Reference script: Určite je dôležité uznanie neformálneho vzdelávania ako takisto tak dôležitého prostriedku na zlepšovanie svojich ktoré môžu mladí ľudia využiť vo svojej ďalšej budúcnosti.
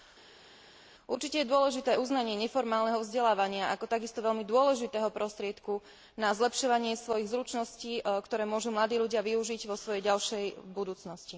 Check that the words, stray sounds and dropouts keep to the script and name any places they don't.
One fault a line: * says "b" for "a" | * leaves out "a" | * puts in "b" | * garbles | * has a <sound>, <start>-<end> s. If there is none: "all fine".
* says "veľmi" for "tak"
* puts in "zručností"